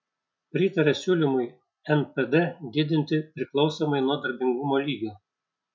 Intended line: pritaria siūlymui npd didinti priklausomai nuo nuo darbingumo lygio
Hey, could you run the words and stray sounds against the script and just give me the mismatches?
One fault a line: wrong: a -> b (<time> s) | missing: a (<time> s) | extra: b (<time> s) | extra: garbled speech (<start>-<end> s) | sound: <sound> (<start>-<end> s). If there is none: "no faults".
missing: nuo (4.2 s)